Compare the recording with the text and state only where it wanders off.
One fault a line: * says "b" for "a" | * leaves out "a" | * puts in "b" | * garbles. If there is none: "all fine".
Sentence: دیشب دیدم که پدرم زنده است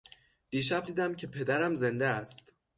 all fine